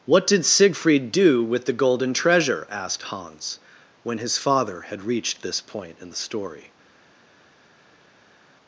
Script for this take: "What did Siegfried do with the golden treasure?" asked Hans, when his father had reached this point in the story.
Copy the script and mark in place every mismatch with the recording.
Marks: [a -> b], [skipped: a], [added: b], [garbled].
"What did Siegfried do with the golden treasure?" asked Hans, when his father had reached this point in the story.